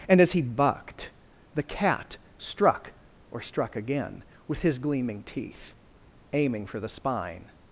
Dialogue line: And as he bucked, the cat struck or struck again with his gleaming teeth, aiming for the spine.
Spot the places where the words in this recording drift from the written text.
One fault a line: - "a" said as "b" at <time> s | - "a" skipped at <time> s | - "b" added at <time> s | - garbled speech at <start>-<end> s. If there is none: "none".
none